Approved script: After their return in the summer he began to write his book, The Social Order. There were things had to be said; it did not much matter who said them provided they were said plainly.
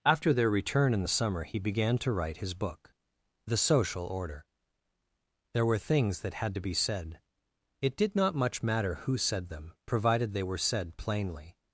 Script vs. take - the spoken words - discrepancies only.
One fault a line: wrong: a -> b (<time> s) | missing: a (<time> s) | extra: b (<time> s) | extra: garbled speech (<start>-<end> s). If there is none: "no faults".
extra: that (6.2 s)